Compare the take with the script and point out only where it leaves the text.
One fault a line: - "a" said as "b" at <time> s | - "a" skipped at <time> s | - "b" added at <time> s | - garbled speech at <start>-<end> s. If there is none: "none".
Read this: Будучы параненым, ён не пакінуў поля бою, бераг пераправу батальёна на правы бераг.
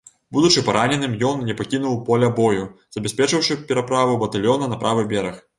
- "бераг" said as "забяспечыўшы" at 3.0 s